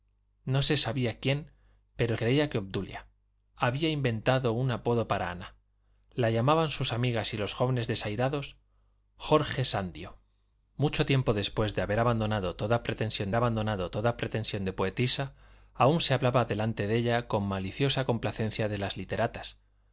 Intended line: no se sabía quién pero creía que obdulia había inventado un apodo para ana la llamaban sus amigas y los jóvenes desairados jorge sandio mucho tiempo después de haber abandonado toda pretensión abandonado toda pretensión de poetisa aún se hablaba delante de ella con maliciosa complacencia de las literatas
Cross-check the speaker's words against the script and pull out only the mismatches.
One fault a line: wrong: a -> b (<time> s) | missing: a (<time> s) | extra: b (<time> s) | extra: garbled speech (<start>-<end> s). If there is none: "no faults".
no faults